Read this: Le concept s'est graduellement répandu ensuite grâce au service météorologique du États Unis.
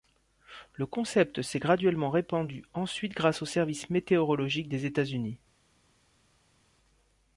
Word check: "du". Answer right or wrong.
wrong